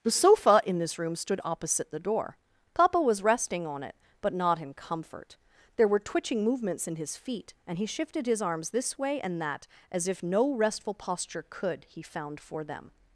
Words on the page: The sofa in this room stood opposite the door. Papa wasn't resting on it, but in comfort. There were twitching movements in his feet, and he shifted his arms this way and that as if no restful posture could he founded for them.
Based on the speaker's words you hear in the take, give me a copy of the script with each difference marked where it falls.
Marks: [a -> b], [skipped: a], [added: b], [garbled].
The sofa in this room stood opposite the door. Papa [wasn't -> was] resting on it, but [added: not] in comfort. There were twitching movements in his feet, and he shifted his arms this way and that as if no restful posture could he [founded -> found] for them.